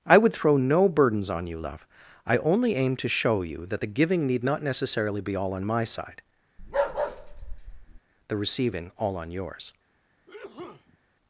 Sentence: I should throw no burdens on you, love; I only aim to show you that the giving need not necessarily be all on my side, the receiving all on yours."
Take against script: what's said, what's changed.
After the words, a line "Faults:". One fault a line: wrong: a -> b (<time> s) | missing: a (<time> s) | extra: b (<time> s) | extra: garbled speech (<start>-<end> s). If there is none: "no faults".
I would throw no burdens on you, love; I only aim to show you that the giving need not necessarily be all on my side, the receiving all on yours."
Faults:
wrong: should -> would (0.2 s)